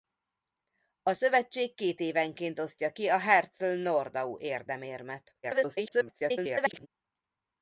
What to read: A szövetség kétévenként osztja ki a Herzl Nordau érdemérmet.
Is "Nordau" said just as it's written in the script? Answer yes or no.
yes